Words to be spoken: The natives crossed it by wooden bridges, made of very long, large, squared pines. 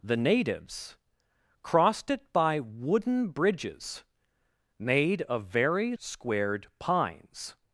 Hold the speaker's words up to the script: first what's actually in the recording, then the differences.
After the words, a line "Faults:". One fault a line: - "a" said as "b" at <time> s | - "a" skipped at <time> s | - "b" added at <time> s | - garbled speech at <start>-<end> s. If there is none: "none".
The natives crossed it by wooden bridges, made of very squared pines.
Faults:
- "long large" skipped at 5.9 s